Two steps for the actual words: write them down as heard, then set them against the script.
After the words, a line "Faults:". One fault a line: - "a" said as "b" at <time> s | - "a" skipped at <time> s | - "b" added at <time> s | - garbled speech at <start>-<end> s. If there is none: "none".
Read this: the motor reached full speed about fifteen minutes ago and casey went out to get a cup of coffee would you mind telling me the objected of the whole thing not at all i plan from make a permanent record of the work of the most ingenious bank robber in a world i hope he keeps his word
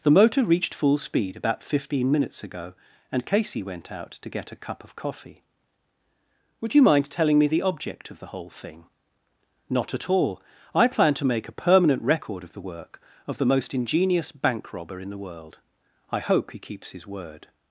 the motor reached full speed about fifteen minutes ago and casey went out to get a cup of coffee would you mind telling me the object of the whole thing not at all i plan to make a permanent record of the work of the most ingenious bank robber in the world i hope he keeps his word
Faults:
- "objected" said as "object" at 7.6 s
- "from" said as "to" at 11.2 s
- "a" said as "the" at 15.1 s